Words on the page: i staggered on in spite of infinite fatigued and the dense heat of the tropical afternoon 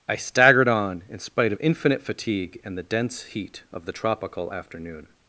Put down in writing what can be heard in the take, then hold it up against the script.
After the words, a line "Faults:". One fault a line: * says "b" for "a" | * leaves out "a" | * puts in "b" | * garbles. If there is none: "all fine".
i staggered on in spite of infinite fatigue and the dense heat of the tropical afternoon
Faults:
* says "fatigue" for "fatigued"